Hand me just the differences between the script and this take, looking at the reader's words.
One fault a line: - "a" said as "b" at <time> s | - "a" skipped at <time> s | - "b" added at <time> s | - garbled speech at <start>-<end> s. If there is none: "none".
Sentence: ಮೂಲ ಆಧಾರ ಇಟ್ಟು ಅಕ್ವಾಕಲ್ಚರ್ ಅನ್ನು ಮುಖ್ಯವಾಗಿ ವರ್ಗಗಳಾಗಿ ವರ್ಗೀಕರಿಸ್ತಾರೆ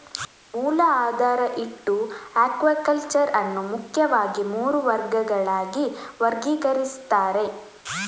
- "ಮೂರು" added at 4.5 s